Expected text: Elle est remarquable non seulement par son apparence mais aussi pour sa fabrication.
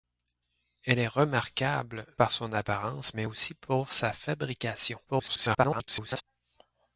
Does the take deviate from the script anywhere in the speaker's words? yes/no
yes